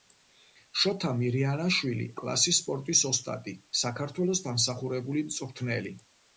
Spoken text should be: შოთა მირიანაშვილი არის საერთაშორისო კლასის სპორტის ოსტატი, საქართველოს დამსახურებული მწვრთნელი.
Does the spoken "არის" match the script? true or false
false